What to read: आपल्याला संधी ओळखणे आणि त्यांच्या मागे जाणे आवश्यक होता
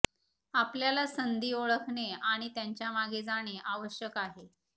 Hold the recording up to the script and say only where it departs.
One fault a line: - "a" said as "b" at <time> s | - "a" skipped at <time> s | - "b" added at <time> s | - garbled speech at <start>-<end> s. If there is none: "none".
- "होता" said as "आहे" at 4.2 s